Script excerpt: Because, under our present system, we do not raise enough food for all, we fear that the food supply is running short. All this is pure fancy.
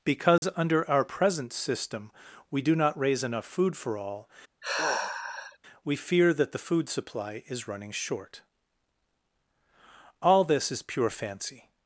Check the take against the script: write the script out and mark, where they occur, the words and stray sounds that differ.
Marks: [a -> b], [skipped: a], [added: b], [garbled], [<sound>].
Because, [dropout] under our present system, we do not raise enough food for all, [sigh] we fear that the food supply is running short. All this is pure fancy.